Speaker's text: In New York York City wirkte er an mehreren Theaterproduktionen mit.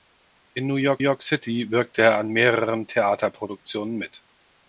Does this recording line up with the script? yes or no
yes